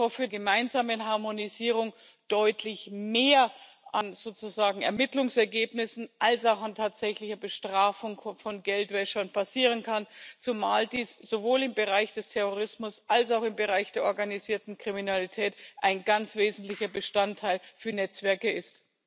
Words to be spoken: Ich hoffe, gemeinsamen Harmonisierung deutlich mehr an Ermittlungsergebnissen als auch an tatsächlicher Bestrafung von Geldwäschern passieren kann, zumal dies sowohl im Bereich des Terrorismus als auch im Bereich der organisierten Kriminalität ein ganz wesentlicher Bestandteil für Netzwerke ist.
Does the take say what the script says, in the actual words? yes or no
yes